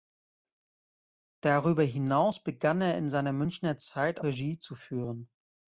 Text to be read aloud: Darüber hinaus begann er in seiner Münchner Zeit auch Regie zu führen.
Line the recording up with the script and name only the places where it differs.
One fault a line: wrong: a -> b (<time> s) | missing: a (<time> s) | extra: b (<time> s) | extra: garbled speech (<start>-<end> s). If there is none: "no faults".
missing: auch (4.2 s)